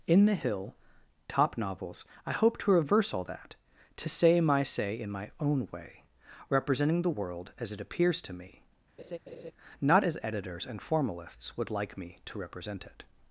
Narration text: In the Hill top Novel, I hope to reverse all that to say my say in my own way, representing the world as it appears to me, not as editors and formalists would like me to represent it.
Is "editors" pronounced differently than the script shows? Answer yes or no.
no